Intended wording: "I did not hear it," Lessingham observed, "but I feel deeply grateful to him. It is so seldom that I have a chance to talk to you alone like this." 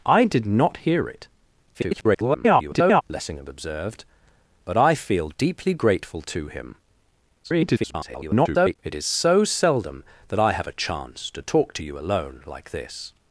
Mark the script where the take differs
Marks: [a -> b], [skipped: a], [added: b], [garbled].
"I did not hear it," [garbled] Lessingham observed, "but I feel deeply grateful to him. [garbled] It is so seldom that I have a chance to talk to you alone like this."